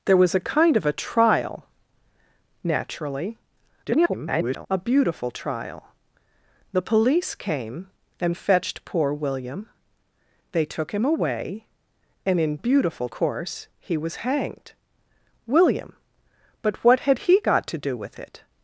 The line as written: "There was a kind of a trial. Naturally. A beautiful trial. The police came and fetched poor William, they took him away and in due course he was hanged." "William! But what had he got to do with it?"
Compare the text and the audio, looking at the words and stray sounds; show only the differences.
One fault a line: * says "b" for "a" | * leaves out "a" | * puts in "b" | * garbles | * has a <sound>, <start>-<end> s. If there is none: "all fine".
* garbles
* says "beautiful" for "due"